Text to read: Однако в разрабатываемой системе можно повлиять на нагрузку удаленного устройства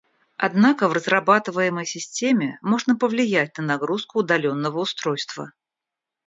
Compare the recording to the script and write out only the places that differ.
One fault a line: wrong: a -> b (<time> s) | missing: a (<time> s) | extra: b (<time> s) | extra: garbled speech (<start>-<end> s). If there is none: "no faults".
no faults